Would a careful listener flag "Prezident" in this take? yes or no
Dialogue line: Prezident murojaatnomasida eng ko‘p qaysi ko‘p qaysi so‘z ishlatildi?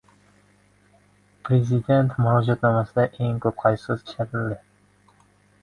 no